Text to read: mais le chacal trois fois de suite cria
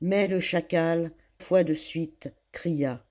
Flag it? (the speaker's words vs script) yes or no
yes